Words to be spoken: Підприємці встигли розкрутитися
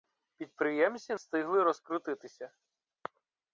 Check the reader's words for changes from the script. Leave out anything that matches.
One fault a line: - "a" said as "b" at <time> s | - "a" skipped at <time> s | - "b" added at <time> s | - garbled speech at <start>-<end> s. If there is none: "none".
none